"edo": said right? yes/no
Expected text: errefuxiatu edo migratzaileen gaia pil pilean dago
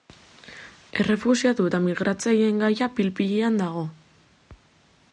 no